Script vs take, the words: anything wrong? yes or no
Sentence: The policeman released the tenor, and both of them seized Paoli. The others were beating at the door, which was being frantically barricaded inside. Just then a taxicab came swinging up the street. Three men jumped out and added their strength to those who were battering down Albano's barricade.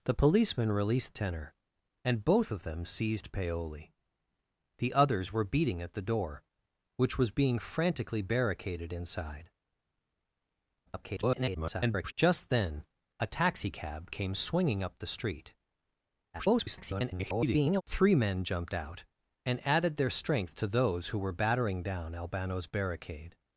yes